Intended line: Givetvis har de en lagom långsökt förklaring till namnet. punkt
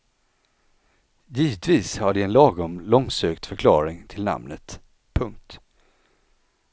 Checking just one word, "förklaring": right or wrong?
right